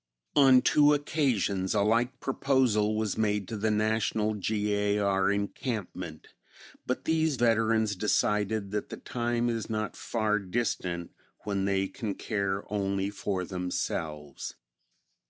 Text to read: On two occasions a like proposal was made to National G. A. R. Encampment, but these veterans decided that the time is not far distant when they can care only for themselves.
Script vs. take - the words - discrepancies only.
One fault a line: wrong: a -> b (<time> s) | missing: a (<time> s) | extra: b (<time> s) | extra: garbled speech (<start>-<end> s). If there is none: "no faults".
extra: the (3.6 s)